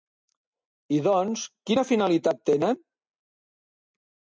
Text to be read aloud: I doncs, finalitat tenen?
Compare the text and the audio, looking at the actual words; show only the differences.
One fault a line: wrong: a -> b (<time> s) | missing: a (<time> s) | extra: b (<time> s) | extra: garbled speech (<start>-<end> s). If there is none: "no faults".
extra: quina (1.7 s)